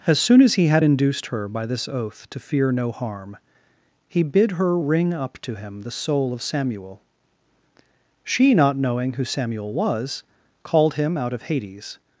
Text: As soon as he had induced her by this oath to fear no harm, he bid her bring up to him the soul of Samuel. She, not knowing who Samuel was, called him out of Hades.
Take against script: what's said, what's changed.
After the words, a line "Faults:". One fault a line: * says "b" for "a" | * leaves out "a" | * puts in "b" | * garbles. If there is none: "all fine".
As soon as he had induced her by this oath to fear no harm, he bid her ring up to him the soul of Samuel. She, not knowing who Samuel was, called him out of Hades.
Faults:
* says "ring" for "bring"